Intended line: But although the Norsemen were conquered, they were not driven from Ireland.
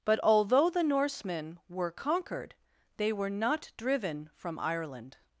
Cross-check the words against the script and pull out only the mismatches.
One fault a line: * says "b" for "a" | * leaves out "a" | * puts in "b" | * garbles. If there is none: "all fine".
all fine